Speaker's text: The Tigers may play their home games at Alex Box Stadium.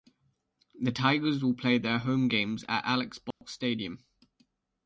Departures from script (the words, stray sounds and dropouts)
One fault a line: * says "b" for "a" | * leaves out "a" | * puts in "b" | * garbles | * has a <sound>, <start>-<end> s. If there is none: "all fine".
* says "will" for "may"
* has a dropout, 3.3-3.4 s